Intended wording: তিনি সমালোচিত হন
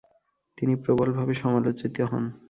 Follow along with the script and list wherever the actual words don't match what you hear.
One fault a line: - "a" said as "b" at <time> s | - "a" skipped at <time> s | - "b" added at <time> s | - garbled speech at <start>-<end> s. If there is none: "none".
- "প্রবলভাবে" added at 0.8 s